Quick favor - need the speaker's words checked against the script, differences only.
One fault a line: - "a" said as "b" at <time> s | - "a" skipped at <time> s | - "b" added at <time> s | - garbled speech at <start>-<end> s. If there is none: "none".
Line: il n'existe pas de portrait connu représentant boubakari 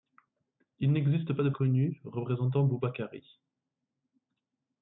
- "portrait" skipped at 1.5 s